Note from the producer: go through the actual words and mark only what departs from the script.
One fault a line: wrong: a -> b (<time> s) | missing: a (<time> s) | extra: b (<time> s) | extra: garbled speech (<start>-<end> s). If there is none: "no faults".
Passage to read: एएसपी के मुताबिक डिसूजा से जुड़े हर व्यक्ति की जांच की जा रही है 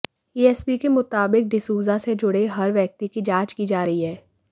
no faults